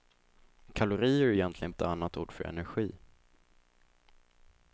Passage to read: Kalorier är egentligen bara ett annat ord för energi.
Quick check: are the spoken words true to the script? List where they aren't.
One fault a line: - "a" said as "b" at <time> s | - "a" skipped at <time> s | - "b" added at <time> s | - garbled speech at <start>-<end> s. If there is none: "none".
- "bara" skipped at 1.7 s